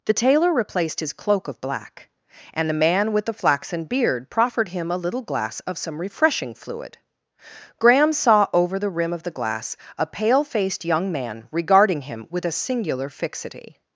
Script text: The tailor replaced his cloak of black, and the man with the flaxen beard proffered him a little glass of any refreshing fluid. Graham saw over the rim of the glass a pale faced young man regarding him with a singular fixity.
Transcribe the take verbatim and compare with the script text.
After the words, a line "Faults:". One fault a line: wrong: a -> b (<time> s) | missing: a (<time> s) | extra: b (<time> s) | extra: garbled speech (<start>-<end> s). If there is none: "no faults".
The tailor replaced his cloak of black, and the man with the flaxen beard proffered him a little glass of some refreshing fluid. Graham saw over the rim of the glass a pale faced young man regarding him with a singular fixity.
Faults:
wrong: any -> some (5.8 s)